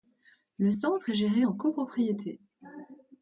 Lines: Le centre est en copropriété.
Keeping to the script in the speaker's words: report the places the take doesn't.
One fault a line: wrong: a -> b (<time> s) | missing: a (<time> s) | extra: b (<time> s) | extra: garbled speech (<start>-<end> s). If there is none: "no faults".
extra: géré (1.2 s)